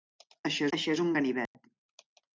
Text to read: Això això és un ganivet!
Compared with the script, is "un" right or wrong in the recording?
right